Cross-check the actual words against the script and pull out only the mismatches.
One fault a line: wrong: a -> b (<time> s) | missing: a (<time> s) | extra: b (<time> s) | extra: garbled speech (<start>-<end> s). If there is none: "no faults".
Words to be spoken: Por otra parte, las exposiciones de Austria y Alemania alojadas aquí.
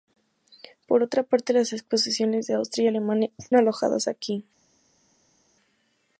no faults